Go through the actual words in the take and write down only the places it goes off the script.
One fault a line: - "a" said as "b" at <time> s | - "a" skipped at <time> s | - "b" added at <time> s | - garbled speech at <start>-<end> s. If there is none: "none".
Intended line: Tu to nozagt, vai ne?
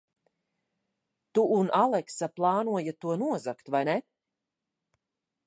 - "un Aleksa plānojat" added at 1.6 s